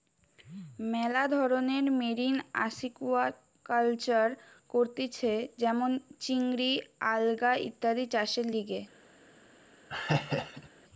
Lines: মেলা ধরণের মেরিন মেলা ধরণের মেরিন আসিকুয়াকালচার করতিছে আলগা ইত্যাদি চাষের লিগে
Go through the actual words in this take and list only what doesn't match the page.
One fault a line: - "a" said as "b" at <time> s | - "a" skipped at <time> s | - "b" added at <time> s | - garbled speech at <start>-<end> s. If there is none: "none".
- "মেলা ধরণের মেরিন আসিকুয়াকালচার করতিছে" said as "আসিকুয়াকালচার করতিছে যেমন চিংড়ি" at 2.6 s